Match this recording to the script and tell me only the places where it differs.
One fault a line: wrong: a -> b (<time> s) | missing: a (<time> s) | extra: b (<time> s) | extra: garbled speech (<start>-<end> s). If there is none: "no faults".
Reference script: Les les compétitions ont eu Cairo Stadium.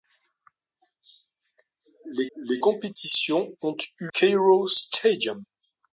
no faults